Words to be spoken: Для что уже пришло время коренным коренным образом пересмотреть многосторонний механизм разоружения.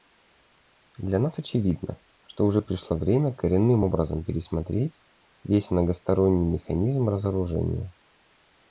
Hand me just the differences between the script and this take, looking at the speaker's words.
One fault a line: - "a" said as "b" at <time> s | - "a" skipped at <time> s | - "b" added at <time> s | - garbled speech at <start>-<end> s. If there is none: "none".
- "нас очевидно" added at 1.2 s
- "коренным" skipped at 3.8 s
- "весь" added at 5.4 s